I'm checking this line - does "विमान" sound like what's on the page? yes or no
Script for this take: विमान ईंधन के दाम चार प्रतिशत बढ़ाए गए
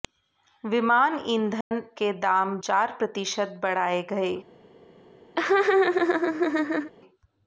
yes